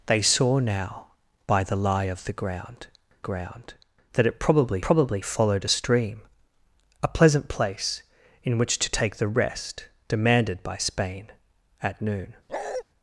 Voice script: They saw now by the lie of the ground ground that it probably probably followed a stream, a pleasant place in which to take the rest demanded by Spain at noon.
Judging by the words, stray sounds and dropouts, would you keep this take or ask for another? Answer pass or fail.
fail